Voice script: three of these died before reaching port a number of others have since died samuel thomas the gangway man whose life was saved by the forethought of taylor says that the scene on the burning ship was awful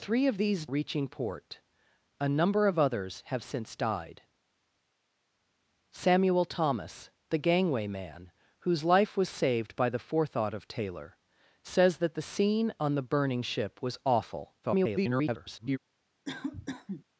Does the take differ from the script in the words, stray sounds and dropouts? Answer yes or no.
yes